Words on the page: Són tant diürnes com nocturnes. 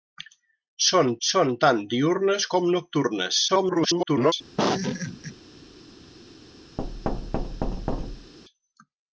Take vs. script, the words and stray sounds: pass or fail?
fail